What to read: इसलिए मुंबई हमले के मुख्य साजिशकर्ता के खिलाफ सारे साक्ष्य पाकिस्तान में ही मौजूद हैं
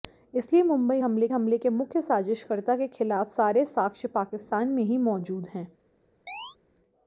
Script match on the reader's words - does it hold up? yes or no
no